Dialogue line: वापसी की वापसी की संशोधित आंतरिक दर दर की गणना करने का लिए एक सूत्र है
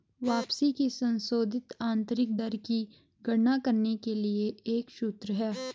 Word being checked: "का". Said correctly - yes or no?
no